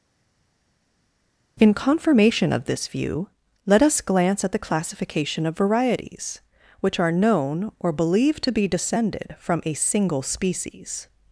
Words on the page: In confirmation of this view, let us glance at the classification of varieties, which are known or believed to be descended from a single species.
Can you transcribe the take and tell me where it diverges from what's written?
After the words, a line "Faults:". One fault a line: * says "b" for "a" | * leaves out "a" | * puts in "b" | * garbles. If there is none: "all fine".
In confirmation of this view, let us glance at the classification of varieties, which are known or believed to be descended from a single species.
Faults:
all fine